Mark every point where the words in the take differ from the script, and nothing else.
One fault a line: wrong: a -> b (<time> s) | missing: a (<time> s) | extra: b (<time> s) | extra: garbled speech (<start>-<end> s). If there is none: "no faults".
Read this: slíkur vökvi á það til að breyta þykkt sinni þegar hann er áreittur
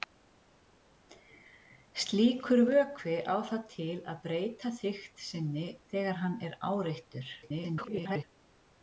extra: garbled speech (7.4-8.2 s)